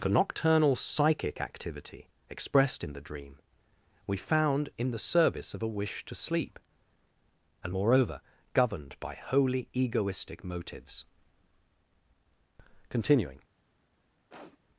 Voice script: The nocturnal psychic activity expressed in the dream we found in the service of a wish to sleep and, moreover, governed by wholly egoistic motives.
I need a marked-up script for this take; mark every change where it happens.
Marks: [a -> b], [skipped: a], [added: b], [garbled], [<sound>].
The nocturnal psychic activity expressed in the dream we found in the service of a wish to sleep and, moreover, governed by wholly egoistic motives. [added: Continuing] [sniff]